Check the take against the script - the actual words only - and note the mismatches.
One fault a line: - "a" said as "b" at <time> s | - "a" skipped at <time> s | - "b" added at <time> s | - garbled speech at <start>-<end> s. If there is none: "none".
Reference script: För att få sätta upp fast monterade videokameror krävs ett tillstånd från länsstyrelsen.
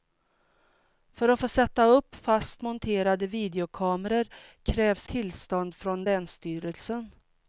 - "ett" skipped at 5.1 s